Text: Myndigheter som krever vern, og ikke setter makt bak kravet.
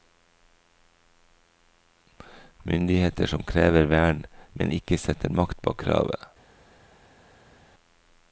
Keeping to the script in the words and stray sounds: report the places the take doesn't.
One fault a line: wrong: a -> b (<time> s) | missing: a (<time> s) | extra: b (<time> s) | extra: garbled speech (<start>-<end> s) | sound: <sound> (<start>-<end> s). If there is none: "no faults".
wrong: og -> men (4.5 s)